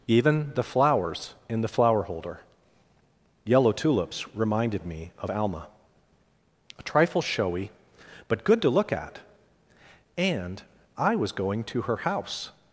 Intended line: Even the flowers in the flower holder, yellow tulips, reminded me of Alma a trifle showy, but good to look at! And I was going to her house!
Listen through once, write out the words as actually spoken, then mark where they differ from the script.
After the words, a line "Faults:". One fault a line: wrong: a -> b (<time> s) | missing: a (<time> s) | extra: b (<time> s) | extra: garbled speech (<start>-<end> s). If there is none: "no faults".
Even the flowers in the flower holder, yellow tulips, reminded me of Alma a trifle showy, but good to look at! And I was going to her house!
Faults:
no faults